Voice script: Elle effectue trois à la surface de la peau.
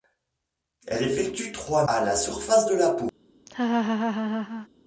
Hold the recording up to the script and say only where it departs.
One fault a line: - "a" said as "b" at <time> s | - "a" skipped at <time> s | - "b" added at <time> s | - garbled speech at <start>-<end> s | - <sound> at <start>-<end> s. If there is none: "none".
- laugh at 3.5-4.7 s